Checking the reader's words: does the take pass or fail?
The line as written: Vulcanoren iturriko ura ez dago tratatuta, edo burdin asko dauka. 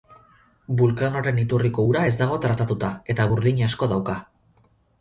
fail